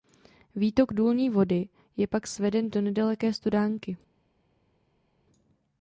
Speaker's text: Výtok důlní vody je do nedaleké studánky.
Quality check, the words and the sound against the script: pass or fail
fail